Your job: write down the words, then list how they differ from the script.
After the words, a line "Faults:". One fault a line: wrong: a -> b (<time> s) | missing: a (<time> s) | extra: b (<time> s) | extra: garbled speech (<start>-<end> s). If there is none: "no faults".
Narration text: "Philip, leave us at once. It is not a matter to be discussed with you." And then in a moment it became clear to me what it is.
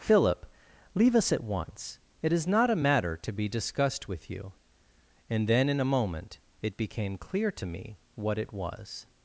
"Philip, leave us at once. It is not a matter to be discussed with you." And then in a moment it became clear to me what it was.
Faults:
wrong: is -> was (8.5 s)